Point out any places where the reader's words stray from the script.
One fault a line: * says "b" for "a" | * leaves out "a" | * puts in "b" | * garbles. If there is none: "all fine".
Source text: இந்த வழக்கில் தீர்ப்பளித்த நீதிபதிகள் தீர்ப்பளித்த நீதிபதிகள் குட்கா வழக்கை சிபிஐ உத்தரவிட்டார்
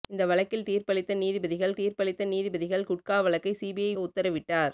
all fine